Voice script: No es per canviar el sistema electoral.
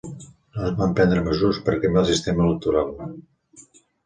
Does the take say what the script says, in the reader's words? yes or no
no